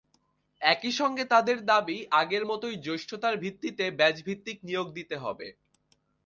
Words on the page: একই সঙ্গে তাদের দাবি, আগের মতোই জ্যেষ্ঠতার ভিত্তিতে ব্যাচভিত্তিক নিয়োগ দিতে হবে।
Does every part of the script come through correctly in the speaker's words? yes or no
yes